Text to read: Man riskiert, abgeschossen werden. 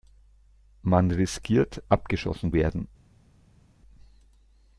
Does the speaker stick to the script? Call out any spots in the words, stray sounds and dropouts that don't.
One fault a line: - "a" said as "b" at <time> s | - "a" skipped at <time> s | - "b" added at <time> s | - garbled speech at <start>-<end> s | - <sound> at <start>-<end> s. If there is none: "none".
none